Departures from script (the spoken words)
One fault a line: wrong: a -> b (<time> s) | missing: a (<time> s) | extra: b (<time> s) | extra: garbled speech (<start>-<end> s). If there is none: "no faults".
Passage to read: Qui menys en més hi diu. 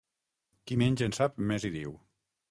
extra: sap (1.2 s)